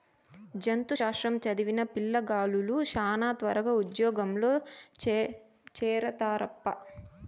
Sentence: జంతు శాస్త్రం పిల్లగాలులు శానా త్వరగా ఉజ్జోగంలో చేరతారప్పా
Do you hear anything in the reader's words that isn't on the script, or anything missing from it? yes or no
yes